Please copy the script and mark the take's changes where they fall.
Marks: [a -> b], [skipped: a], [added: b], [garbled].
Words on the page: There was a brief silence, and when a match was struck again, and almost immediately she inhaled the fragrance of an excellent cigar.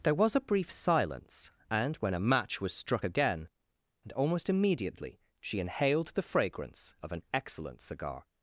There was a brief silence, and when a match was struck again, and almost immediately she inhaled the fragrance of an excellent cigar.